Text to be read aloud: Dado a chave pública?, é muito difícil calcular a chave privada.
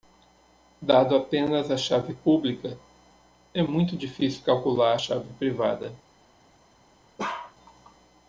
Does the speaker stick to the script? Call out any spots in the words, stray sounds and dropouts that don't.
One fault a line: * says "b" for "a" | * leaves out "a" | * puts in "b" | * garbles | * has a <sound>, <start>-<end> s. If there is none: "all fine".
* puts in "apenas"
* has a bark, 7.2-7.5 s